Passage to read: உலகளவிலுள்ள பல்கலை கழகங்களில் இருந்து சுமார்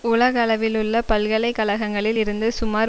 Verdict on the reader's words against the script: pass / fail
pass